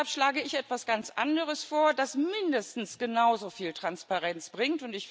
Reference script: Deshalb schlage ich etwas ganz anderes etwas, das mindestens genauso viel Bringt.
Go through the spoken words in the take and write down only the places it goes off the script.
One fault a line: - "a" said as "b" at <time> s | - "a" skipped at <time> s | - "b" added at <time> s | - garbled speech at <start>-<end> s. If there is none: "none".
- "etwas" said as "vor" at 1.6 s
- "Transparenz" added at 3.7 s